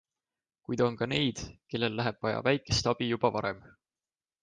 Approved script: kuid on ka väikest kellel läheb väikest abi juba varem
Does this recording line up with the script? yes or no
no